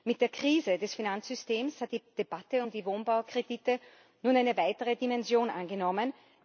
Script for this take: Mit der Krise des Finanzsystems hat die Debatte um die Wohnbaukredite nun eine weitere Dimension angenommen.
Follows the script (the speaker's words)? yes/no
yes